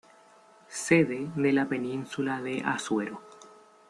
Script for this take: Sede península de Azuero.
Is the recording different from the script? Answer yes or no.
yes